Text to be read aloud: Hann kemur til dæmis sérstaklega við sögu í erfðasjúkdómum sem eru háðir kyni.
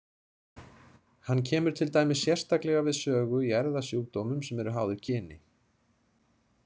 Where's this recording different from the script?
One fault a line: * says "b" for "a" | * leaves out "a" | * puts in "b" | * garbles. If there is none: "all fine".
all fine